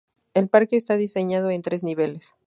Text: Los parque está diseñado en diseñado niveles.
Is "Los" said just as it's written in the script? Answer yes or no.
no